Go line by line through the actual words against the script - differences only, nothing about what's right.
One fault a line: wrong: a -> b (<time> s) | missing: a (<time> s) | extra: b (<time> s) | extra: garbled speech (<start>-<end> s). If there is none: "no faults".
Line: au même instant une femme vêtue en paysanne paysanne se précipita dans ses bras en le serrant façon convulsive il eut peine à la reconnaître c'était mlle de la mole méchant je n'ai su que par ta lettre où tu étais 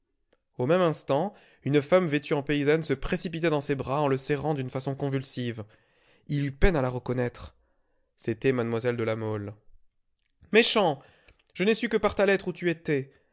missing: paysanne (2.8 s)
extra: d'une (4.5 s)